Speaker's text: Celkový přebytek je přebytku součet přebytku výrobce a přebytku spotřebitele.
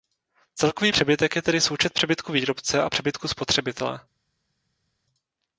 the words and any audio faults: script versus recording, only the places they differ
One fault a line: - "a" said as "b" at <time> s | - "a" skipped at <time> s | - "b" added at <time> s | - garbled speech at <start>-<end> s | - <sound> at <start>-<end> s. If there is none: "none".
- "přebytku" said as "tedy" at 1.4 s